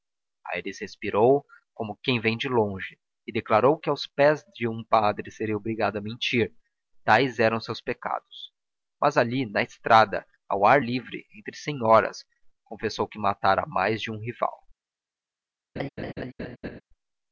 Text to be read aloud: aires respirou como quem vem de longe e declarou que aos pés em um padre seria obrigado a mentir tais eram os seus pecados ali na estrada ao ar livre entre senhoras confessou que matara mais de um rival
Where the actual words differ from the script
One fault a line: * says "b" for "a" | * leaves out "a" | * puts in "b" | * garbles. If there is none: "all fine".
* says "de" for "em"
* puts in "mas"